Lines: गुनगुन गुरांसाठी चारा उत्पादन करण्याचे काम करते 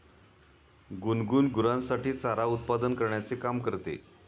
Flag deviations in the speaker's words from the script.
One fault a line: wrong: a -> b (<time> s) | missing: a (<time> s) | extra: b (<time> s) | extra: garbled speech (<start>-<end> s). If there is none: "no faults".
no faults